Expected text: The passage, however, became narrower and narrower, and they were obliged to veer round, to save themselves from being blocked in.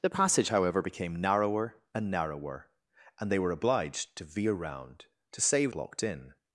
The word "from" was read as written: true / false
false